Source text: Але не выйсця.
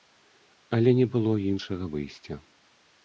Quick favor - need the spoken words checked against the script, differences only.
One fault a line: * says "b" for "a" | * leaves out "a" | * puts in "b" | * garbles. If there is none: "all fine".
* puts in "было іншага"